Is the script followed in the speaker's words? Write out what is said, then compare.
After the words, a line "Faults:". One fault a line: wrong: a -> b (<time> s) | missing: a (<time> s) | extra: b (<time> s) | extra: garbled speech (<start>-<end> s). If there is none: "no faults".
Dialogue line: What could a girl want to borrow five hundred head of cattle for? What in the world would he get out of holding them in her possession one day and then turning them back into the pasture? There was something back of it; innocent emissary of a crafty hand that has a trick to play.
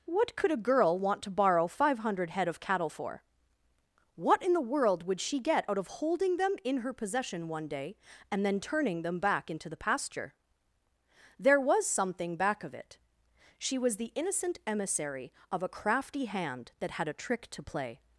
What could a girl want to borrow five hundred head of cattle for? What in the world would she get out of holding them in her possession one day and then turning them back into the pasture? There was something back of it; she was the innocent emissary of a crafty hand that had a trick to play.
Faults:
wrong: he -> she (5.2 s)
extra: she was the (13.6 s)
wrong: has -> had (16.9 s)